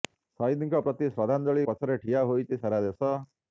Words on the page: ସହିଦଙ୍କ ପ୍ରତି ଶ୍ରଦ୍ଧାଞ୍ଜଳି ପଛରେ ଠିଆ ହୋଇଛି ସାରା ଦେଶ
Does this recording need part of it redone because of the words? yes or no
no